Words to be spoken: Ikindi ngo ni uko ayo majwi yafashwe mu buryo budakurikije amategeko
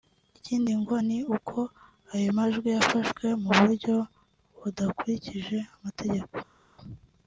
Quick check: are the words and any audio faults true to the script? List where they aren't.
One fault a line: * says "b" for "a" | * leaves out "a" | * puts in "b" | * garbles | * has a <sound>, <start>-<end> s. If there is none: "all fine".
all fine